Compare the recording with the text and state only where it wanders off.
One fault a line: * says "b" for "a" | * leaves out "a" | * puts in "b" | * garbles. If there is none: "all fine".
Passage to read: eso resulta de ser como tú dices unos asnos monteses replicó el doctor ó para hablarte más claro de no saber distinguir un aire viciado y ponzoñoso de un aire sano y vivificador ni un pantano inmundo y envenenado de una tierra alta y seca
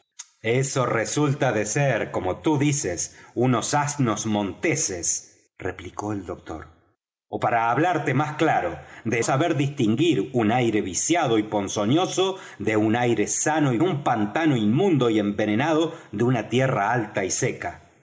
* leaves out "no"
* leaves out "vivificador ni"